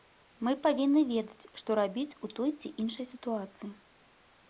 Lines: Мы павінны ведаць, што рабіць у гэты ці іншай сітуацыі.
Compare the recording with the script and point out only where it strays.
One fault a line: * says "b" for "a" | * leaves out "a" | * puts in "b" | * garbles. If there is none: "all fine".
* says "той" for "гэты"